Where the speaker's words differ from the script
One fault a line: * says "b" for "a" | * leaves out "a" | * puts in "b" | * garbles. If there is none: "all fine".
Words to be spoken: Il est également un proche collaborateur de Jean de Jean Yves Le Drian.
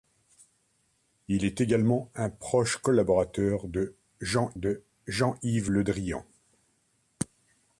all fine